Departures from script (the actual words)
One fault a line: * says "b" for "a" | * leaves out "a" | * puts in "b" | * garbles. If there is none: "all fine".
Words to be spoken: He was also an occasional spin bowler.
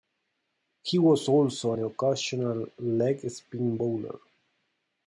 * puts in "leg"